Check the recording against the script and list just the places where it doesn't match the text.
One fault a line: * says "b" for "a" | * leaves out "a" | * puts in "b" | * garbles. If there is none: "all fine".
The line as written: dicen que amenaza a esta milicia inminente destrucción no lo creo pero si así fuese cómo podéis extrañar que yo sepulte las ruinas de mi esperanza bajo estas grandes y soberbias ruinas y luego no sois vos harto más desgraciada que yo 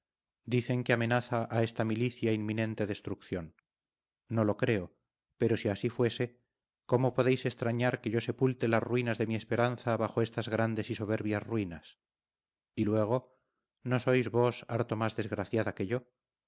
all fine